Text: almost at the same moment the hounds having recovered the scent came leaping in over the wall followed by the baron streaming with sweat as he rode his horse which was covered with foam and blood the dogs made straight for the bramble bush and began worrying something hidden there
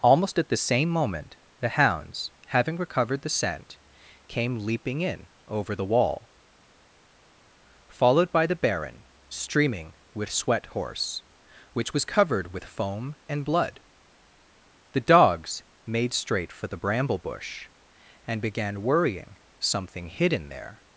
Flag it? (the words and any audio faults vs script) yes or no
yes